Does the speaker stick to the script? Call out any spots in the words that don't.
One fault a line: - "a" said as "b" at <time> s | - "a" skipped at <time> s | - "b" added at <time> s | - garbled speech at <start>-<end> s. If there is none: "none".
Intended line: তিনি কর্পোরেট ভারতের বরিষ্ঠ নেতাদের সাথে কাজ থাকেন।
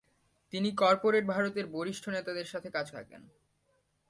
none